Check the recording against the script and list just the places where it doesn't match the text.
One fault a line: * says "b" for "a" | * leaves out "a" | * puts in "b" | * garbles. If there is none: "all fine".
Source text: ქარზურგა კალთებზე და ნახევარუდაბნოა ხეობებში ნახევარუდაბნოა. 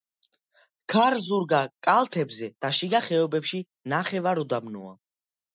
* says "შიგა" for "ნახევარუდაბნოა"